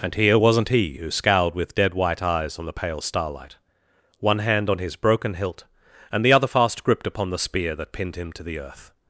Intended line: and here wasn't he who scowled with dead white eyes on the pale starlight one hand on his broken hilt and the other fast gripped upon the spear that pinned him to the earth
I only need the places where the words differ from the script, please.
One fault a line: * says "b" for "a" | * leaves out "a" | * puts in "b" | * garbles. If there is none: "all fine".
all fine